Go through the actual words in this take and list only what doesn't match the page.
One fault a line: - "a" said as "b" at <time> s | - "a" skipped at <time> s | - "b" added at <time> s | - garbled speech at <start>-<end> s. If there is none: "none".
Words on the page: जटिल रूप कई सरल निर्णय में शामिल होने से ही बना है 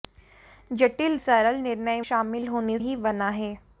- "रूप कई" skipped at 1.2 s
- "में" skipped at 2.0 s
- "से" skipped at 2.8 s